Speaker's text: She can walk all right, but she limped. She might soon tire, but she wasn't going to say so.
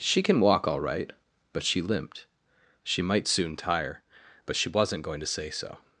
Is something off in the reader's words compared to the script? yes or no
no